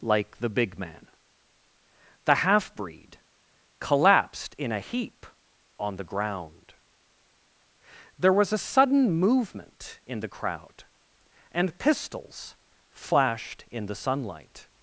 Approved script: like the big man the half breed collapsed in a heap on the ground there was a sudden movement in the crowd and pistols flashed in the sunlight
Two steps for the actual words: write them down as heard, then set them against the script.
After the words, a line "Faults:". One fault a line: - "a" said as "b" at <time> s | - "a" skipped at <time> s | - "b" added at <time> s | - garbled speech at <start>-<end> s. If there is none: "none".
like the big man the half breed collapsed in a heap on the ground there was a sudden movement in the crowd and pistols flashed in the sunlight
Faults:
none